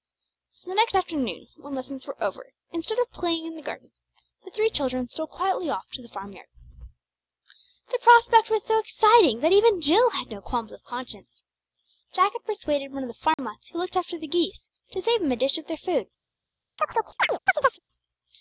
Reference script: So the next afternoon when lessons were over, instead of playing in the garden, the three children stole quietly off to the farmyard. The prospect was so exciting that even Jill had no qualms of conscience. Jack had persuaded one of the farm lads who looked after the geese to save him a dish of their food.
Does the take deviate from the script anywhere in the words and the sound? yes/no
yes